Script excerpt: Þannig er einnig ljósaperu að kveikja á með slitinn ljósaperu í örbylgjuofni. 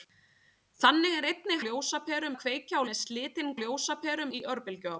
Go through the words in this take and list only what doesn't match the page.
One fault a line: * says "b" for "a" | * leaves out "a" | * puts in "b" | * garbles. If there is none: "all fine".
all fine